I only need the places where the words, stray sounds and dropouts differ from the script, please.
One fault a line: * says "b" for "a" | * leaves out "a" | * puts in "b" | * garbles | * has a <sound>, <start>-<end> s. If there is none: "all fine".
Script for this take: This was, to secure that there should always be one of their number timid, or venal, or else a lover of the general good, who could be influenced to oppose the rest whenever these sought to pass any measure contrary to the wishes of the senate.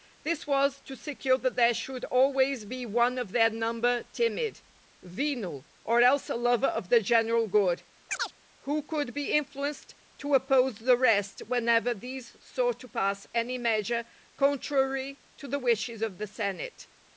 * leaves out "or"
* has a chirp, 8.1-8.3 s